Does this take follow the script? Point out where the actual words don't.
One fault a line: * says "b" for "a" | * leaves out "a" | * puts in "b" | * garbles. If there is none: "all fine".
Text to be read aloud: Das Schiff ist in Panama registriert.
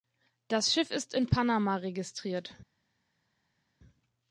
all fine